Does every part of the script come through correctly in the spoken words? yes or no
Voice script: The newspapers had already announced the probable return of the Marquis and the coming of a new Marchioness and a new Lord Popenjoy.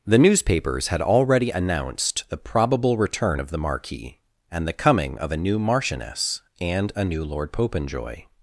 yes